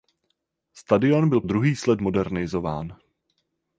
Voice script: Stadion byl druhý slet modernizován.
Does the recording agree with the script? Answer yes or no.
yes